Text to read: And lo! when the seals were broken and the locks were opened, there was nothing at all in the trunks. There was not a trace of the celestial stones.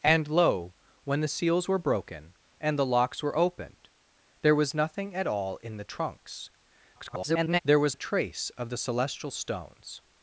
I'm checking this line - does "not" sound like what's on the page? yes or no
no